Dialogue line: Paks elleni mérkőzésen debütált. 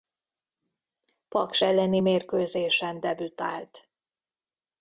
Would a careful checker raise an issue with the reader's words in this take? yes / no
no